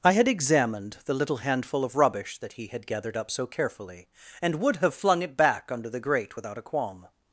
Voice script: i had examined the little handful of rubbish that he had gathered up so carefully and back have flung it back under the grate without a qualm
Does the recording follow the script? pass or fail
fail